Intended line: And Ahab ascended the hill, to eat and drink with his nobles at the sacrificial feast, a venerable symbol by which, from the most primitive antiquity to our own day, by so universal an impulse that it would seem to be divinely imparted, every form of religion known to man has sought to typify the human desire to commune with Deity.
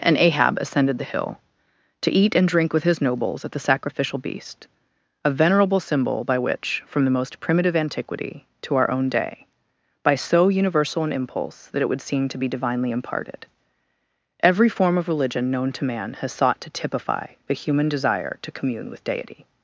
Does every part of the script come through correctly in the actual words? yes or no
no